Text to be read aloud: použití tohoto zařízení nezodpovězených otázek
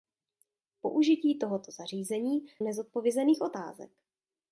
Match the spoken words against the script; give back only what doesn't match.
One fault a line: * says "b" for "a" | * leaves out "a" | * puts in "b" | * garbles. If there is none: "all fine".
all fine